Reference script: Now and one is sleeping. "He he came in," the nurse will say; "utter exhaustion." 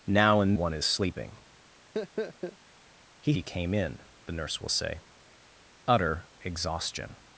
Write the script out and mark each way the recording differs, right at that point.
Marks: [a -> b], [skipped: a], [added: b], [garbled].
Now and one is sleeping. "He he came in," the nurse will say; "utter exhaustion."